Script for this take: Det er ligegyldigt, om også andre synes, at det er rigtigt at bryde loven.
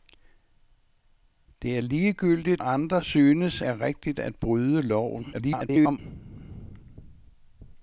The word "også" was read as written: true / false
false